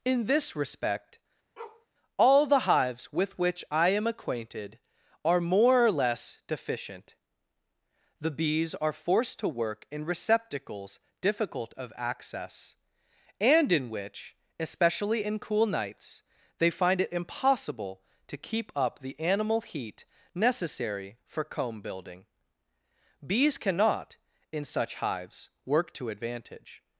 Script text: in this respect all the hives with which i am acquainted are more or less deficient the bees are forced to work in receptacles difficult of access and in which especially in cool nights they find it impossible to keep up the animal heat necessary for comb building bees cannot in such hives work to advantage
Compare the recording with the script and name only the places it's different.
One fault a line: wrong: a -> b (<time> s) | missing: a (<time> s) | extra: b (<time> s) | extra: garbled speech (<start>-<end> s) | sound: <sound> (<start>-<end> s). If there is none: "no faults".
sound: bark (1.6-1.9 s)